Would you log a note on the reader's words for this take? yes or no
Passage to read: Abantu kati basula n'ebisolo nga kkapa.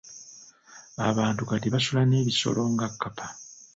no